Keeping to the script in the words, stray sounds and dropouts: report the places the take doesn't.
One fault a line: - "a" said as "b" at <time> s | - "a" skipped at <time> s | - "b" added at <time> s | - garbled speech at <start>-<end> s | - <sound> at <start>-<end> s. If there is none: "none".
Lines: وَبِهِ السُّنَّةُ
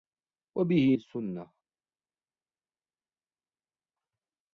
none